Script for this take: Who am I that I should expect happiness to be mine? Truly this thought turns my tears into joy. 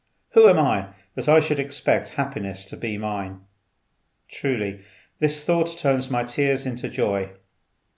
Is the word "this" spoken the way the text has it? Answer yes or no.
yes